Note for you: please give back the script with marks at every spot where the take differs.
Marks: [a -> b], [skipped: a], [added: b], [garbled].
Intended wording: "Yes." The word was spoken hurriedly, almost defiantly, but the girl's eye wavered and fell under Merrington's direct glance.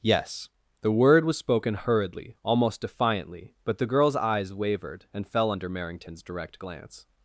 "Yes." The word was spoken hurriedly, almost defiantly, but the girl's [eye -> eyes] wavered and fell under Merrington's direct glance.